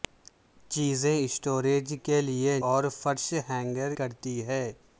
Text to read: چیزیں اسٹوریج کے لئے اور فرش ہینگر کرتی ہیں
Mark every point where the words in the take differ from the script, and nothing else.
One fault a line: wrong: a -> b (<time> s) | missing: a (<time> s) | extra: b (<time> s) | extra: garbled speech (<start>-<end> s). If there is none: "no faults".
no faults